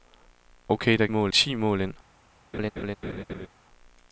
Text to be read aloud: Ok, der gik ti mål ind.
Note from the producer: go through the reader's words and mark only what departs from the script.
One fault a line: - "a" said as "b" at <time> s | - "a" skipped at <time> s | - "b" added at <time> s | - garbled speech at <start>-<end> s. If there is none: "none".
- "gik" said as "mål" at 1.1 s